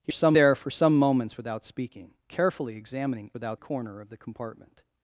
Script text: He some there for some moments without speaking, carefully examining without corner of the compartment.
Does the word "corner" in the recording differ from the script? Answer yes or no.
no